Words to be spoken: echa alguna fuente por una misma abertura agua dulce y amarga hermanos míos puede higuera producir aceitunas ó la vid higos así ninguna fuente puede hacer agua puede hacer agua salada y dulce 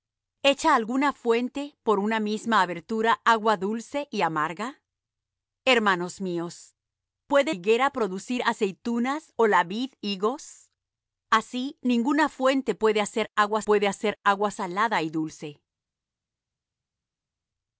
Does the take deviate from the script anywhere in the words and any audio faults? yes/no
no